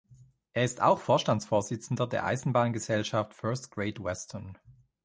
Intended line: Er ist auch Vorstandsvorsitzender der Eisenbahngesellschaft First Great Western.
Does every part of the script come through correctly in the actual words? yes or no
yes